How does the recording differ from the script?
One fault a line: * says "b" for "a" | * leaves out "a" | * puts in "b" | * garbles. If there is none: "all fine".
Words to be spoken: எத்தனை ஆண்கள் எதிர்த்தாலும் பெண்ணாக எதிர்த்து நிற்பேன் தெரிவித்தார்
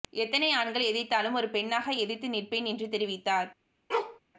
* puts in "ஒரு"
* puts in "என்று"